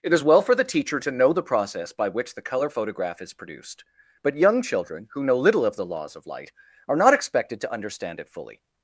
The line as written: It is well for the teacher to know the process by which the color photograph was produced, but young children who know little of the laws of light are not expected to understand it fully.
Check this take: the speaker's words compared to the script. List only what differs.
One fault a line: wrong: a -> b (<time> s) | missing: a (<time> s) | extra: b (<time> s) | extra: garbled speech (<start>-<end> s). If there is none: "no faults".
wrong: was -> is (3.2 s)